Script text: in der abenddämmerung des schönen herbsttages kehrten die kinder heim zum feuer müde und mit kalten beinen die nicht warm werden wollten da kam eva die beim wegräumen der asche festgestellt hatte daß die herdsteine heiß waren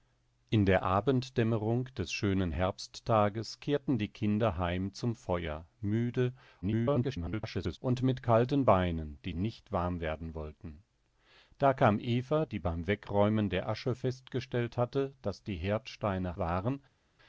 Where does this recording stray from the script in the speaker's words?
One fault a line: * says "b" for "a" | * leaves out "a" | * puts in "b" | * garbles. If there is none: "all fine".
* garbles
* leaves out "heiß"